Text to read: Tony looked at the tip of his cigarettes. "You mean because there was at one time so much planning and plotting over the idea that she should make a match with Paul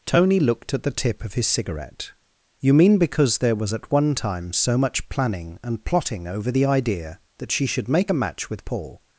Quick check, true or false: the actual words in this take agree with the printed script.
false